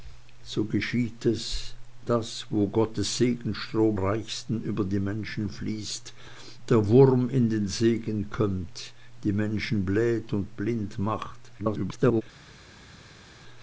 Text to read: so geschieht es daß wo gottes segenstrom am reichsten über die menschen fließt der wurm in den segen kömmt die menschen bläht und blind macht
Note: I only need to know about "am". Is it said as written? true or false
false